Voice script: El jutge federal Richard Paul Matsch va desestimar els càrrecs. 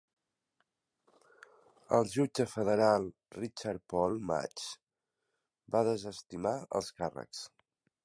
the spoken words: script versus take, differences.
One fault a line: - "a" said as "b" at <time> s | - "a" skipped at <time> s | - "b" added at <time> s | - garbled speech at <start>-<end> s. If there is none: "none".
none